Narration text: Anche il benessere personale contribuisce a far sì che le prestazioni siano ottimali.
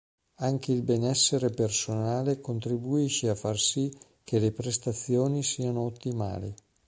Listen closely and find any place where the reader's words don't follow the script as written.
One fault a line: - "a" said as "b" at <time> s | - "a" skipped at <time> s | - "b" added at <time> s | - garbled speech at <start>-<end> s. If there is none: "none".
none